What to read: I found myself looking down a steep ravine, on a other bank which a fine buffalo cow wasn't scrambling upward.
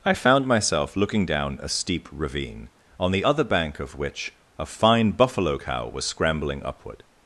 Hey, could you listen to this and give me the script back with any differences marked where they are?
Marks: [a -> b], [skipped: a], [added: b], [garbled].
I found myself looking down a steep ravine, on [a -> the] other bank [added: of] which a fine buffalo cow [wasn't -> was] scrambling upward.